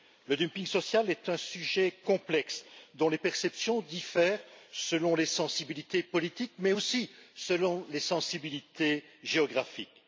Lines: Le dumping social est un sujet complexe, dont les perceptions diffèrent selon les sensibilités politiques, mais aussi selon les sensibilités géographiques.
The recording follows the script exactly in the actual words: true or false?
true